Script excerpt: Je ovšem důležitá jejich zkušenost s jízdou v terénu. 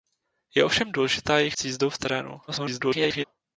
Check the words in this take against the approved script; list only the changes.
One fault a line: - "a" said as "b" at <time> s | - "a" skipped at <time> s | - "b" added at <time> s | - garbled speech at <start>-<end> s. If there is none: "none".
- "zkušenost" skipped at 1.6 s
- garbled speech at 2.5-3.2 s